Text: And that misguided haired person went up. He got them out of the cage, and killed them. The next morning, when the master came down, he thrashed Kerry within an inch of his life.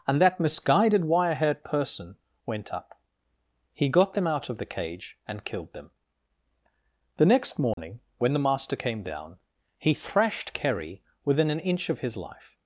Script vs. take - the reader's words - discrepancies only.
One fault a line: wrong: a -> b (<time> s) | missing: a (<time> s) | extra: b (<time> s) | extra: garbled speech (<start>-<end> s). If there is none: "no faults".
extra: wire (1.1 s)